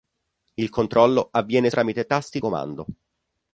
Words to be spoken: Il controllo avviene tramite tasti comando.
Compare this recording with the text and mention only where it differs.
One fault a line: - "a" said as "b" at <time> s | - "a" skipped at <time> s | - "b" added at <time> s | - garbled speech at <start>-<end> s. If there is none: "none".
none